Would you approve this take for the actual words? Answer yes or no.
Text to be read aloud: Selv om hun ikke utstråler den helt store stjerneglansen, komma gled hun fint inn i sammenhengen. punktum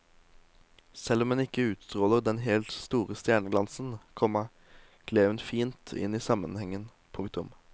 yes